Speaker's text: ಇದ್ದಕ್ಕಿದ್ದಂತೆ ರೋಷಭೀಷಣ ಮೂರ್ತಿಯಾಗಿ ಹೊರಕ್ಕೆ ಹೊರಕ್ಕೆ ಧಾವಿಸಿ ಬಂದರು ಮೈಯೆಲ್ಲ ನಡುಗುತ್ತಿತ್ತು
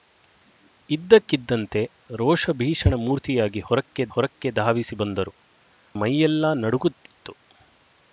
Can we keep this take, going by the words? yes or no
yes